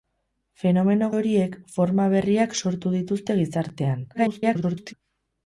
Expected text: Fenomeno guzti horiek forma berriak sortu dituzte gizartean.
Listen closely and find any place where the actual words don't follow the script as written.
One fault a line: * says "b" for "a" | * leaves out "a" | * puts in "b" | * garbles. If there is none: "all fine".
* leaves out "guzti"
* garbles